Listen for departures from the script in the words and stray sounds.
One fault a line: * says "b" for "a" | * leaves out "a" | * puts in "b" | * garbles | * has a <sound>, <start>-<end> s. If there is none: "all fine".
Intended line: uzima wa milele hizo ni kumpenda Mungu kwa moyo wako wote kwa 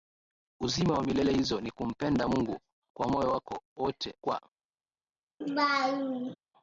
* has a laugh, 5.4-6.4 s